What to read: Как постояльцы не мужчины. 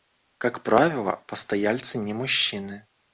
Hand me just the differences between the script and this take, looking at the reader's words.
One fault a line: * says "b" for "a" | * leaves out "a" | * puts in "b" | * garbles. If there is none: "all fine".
* puts in "правило"